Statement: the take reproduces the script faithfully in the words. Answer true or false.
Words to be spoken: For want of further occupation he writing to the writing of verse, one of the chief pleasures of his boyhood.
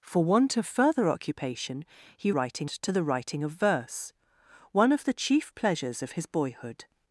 true